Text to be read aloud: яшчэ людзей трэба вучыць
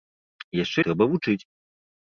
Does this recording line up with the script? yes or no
no